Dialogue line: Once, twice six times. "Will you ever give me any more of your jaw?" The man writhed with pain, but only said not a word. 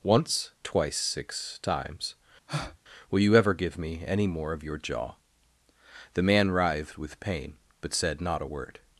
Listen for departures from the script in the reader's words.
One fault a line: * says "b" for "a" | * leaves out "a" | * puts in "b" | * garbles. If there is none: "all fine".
* leaves out "only"